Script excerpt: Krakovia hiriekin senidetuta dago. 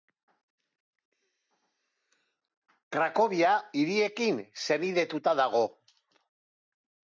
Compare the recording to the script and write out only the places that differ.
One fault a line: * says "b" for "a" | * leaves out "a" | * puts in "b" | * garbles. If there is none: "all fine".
all fine